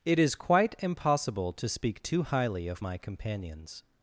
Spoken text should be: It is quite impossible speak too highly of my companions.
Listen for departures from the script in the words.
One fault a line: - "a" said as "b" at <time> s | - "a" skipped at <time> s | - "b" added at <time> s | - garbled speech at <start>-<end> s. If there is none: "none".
- "to" added at 1.5 s